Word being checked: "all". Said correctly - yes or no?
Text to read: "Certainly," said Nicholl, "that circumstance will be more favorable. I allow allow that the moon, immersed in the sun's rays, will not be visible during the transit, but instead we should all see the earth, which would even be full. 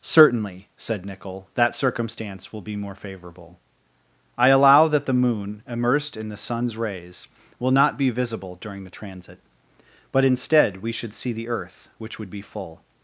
no